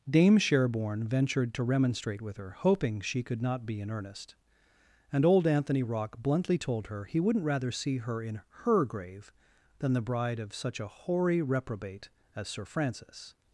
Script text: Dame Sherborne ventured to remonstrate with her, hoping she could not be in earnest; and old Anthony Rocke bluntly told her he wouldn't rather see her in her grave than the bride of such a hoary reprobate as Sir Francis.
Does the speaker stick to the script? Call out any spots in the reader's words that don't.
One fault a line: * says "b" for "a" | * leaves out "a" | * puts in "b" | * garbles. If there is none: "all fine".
all fine